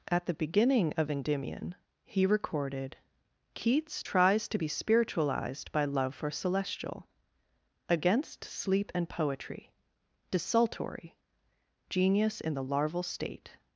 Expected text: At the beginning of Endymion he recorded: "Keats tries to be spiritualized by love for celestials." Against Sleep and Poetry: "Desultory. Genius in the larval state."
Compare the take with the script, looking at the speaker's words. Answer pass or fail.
fail